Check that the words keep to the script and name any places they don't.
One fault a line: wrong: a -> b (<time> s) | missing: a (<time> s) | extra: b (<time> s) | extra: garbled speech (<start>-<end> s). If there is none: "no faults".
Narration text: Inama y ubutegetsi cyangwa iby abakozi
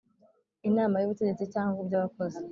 no faults